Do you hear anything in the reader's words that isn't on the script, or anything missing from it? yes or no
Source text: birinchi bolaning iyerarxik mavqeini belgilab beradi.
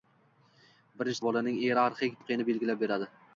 no